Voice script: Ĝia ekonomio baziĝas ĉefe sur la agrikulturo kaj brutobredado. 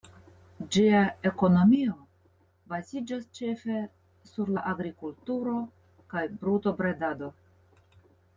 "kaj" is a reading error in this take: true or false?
false